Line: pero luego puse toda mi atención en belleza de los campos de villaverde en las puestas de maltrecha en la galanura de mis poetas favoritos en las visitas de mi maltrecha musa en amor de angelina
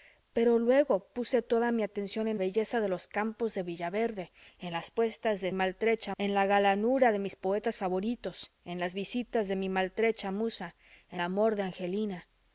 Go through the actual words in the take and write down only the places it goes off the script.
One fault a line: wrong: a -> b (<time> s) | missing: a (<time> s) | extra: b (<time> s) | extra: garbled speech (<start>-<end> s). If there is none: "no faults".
no faults